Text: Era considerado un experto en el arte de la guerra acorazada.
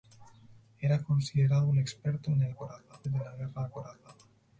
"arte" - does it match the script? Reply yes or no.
no